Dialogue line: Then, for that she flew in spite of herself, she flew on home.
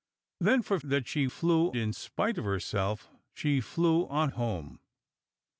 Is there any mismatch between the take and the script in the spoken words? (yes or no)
no